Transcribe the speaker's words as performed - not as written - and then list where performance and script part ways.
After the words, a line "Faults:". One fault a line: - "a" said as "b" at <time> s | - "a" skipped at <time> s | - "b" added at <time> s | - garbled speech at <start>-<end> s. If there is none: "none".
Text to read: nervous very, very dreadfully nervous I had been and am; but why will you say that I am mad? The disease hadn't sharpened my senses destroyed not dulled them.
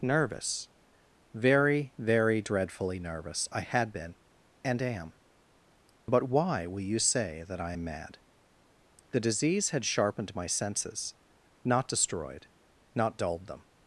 nervous very, very dreadfully nervous I had been and am; but why will you say that I am mad? The disease had sharpened my senses not destroyed not dulled them.
Faults:
- "hadn't" said as "had" at 9.7 s
- "not" added at 11.6 s